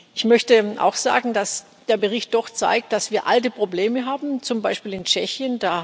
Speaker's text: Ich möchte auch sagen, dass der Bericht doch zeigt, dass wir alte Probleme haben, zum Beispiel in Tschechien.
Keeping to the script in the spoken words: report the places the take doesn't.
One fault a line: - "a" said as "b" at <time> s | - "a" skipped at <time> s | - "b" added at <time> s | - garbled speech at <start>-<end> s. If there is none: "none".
none